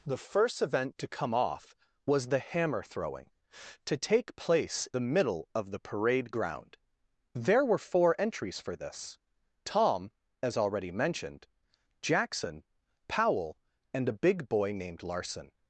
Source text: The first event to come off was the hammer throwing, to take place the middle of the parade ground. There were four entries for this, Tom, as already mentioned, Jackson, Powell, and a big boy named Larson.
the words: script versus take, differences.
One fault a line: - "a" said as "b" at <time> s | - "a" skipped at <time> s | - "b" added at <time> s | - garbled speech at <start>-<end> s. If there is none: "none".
none